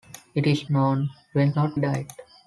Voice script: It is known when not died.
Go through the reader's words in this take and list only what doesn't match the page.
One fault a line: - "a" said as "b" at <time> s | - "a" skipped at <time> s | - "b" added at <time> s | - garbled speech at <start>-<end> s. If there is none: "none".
none